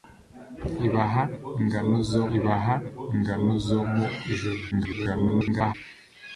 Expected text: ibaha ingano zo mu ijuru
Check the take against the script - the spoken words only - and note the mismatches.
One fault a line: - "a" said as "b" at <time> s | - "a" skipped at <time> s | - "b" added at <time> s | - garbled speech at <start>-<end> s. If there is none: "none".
- "ibaha ingano zo" added at 2.4 s
- garbled speech at 4.7-5.7 s